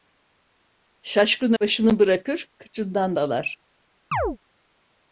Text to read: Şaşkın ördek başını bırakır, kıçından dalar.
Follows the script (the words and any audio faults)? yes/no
no